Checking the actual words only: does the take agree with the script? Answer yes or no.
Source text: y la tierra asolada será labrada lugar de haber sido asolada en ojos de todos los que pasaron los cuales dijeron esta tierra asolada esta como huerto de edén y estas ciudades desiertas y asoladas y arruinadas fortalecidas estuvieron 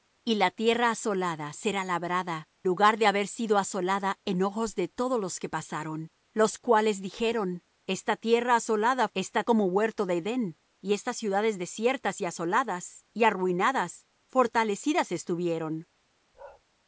yes